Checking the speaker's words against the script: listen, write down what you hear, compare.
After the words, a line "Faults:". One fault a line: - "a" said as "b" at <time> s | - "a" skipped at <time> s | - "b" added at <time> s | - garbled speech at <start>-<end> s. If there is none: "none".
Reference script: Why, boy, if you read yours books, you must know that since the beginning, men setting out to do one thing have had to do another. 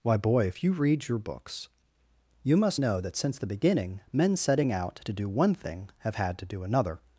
Why, boy, if you read your books, you must know that since the beginning, men setting out to do one thing have had to do another.
Faults:
- "yours" said as "your" at 1.1 s